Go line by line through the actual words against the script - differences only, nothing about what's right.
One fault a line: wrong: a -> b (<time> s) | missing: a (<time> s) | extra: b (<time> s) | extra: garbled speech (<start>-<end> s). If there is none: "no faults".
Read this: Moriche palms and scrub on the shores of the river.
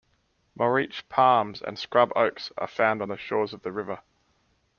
extra: oaks are found (2.2 s)